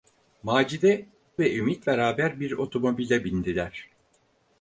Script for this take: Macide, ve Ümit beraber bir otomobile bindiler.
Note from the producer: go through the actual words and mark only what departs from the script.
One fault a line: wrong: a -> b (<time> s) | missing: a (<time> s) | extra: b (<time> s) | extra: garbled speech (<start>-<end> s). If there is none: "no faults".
no faults